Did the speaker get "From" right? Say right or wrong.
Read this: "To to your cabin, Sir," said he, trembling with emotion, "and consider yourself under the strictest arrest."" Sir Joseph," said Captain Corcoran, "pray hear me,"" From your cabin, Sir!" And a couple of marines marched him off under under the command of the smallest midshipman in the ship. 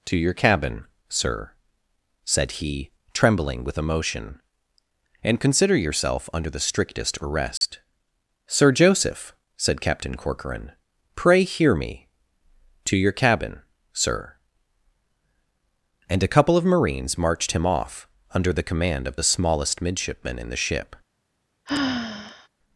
wrong